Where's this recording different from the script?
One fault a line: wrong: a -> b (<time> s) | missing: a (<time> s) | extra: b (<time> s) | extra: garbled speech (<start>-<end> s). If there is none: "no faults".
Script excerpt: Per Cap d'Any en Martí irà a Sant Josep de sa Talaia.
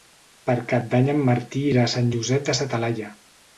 no faults